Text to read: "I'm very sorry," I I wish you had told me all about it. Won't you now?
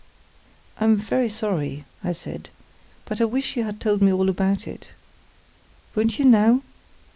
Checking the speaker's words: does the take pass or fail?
fail